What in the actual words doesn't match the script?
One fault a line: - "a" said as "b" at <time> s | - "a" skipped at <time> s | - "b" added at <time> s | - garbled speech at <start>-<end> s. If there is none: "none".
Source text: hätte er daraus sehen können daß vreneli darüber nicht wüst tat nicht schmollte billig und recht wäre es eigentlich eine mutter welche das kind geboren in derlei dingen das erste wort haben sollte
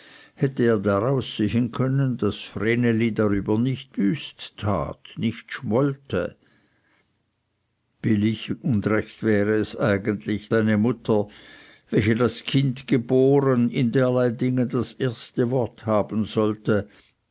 none